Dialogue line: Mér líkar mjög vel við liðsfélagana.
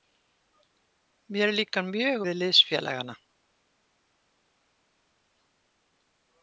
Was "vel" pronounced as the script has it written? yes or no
no